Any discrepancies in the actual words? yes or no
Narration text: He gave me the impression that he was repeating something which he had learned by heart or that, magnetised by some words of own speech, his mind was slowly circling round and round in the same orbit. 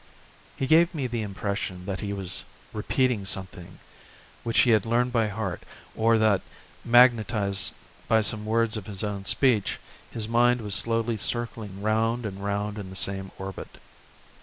yes